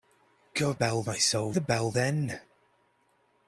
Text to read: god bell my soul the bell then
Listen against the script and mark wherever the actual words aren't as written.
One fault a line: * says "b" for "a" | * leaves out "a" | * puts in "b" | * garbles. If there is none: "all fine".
all fine